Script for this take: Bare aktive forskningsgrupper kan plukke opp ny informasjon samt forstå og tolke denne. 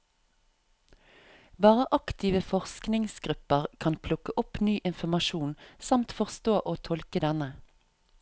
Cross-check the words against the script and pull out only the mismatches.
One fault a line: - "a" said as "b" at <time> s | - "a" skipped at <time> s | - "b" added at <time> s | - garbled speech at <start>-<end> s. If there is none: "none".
none